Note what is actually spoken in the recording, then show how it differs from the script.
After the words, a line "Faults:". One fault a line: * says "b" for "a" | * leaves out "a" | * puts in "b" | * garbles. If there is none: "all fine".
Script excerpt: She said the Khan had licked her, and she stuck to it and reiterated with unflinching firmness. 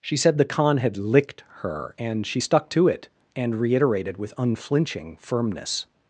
She said the Khan had licked her, and she stuck to it and reiterated with unflinching firmness.
Faults:
all fine